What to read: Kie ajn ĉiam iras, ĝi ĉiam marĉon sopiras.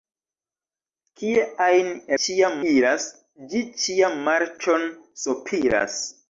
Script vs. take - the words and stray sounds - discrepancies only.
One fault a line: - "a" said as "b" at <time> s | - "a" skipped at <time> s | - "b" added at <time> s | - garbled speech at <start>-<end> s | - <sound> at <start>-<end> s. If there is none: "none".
none